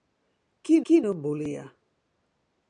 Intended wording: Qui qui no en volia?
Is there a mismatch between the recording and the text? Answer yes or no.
no